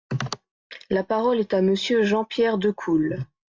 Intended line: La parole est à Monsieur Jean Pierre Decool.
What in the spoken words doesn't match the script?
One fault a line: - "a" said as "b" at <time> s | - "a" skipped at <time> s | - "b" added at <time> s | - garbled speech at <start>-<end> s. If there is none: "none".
none